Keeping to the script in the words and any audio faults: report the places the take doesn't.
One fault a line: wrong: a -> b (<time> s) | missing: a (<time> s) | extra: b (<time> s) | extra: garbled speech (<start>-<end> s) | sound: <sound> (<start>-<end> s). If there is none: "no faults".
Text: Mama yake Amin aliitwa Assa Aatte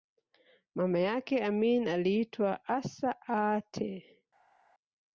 no faults